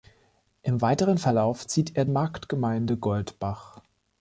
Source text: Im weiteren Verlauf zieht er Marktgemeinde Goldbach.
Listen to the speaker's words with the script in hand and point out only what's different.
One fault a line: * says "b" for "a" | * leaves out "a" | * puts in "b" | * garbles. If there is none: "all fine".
all fine